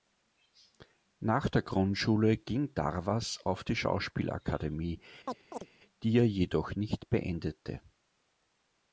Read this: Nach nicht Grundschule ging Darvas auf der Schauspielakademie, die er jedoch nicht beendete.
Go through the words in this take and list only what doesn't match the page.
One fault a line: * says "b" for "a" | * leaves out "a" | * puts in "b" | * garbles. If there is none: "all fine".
* says "der" for "nicht"
* says "die" for "der"